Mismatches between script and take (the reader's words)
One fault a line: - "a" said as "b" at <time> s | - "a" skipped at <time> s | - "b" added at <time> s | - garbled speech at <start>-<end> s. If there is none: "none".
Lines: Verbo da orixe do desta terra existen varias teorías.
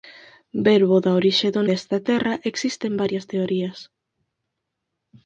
none